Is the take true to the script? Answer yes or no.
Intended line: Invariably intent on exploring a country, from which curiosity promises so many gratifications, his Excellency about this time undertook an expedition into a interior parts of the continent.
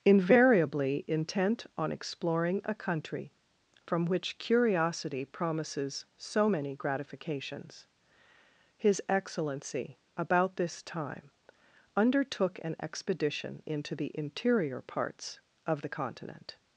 no